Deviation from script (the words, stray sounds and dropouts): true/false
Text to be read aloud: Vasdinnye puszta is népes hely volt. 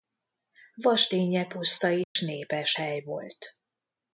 true